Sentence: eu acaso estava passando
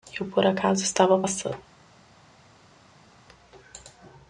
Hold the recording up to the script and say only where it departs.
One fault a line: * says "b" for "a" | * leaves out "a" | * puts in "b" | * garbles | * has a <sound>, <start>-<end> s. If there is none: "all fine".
* puts in "por"